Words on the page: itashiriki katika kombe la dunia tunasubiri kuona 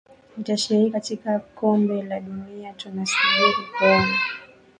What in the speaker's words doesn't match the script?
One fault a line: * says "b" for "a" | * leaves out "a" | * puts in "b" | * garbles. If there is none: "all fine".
all fine